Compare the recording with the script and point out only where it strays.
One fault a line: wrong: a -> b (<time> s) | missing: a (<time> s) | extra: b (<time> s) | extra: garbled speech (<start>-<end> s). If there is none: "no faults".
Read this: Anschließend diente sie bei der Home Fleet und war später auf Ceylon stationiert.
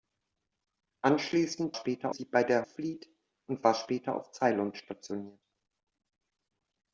wrong: diente -> später (1.7 s)
missing: Home (2.7 s)